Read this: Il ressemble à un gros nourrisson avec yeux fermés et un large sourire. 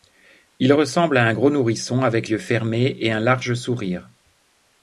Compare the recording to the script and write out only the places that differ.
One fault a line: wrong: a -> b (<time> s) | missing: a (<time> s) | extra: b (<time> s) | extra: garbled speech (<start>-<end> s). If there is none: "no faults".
no faults